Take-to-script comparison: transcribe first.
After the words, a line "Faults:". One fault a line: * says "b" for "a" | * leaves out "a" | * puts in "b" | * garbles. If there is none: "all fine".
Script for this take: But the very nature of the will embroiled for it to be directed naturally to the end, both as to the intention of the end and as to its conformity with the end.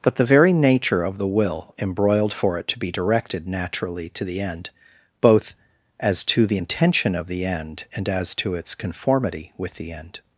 But the very nature of the will embroiled for it to be directed naturally to the end, both as to the intention of the end and as to its conformity with the end.
Faults:
all fine